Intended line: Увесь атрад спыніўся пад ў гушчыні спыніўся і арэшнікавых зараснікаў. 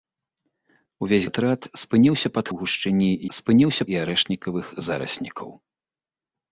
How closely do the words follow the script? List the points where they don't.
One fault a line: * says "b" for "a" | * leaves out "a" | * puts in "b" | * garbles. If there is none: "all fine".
all fine